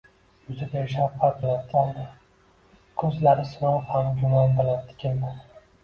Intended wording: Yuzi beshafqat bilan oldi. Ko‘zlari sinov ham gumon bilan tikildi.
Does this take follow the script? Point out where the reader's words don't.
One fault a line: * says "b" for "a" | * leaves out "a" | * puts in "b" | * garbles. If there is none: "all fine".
all fine